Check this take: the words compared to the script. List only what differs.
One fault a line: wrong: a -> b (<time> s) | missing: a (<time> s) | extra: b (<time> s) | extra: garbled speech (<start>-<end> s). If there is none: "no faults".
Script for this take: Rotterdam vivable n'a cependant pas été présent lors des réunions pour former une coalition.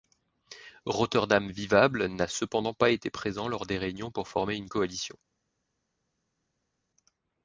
no faults